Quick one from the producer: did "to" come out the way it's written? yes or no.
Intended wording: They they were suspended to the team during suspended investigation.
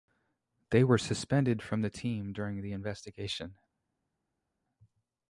no